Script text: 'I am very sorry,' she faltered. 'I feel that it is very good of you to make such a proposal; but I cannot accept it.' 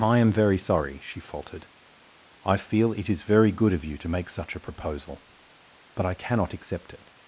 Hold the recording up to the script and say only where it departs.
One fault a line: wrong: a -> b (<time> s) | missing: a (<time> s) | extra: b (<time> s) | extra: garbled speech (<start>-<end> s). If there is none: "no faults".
missing: that (2.9 s)